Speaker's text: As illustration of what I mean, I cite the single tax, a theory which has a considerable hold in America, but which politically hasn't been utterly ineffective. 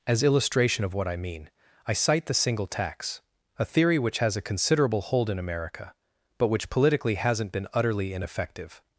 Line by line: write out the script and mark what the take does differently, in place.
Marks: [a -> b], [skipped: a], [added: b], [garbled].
As illustration of what I mean, I cite the single tax, a theory which has a considerable hold in America, but which politically hasn't been utterly ineffective.